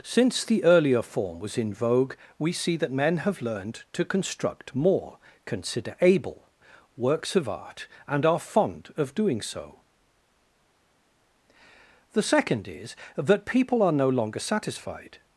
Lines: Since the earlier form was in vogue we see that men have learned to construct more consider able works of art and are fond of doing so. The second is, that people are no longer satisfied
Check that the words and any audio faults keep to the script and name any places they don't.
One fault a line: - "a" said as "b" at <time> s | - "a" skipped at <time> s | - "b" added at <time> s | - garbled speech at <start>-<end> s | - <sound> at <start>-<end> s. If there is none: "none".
none